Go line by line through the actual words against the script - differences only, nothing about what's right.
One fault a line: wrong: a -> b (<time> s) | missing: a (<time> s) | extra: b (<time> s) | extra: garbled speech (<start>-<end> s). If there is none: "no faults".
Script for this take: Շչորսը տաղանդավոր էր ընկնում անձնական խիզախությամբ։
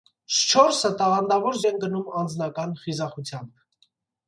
no faults